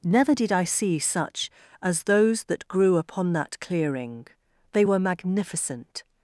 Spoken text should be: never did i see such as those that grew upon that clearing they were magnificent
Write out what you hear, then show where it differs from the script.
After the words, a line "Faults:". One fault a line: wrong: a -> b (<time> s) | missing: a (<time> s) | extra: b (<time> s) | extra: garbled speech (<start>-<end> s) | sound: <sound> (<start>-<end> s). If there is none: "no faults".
never did i see such as those that grew upon that clearing they were magnificent
Faults:
no faults